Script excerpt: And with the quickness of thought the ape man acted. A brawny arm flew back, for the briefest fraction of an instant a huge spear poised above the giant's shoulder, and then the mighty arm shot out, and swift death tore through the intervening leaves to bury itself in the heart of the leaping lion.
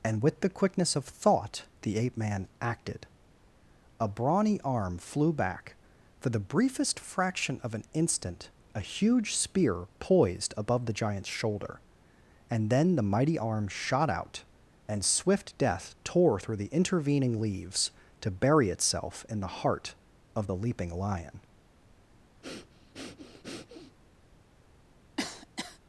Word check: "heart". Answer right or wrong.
right